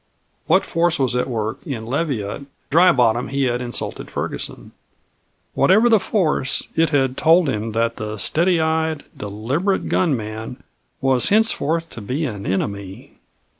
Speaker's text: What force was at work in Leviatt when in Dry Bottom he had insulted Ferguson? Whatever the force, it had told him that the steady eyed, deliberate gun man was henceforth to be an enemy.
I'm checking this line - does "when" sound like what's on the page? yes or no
no